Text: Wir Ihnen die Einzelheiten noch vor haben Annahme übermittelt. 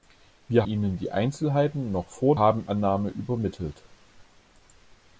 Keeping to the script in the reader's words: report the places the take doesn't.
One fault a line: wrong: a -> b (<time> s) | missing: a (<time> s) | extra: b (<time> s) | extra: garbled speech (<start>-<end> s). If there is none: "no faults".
no faults